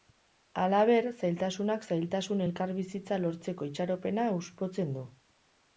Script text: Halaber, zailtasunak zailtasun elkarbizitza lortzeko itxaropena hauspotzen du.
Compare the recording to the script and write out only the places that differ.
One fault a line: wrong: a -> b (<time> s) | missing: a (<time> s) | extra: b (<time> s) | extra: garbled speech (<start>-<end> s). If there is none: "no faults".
no faults